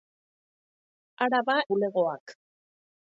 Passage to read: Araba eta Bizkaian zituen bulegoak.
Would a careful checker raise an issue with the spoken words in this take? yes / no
yes